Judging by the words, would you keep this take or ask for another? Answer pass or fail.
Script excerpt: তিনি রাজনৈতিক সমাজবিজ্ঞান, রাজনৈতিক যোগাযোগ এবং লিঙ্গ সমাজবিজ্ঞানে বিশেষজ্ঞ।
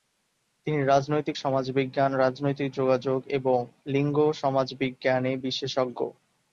pass